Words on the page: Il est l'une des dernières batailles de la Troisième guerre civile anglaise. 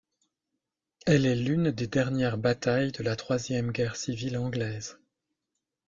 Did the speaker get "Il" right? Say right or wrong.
wrong